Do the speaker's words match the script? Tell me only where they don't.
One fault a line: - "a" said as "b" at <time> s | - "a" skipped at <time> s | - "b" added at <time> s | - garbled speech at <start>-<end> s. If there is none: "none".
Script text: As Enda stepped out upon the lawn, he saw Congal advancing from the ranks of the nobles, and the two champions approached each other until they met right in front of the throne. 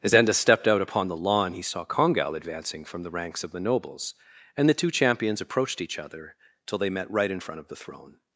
- "until" said as "till" at 6.7 s